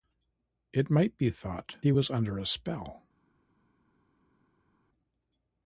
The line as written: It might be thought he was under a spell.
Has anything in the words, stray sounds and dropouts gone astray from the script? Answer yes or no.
no